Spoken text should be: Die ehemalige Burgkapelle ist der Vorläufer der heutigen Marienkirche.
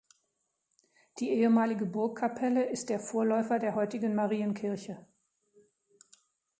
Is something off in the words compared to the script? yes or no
no